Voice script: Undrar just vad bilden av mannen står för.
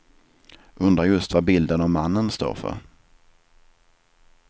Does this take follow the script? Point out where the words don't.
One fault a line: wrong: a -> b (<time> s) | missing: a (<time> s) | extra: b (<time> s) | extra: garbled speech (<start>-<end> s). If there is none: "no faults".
no faults